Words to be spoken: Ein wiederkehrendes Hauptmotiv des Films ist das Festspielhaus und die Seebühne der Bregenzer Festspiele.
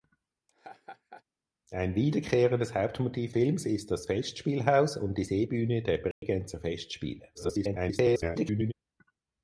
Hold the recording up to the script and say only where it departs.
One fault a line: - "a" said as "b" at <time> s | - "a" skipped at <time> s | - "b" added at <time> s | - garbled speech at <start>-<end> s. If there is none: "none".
- "des" skipped at 3.3 s
- garbled speech at 7.3-8.7 s